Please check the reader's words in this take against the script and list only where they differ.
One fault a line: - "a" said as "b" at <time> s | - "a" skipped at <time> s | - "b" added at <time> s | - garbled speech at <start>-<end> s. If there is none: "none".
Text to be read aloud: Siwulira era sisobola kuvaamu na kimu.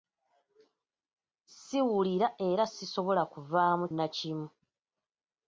none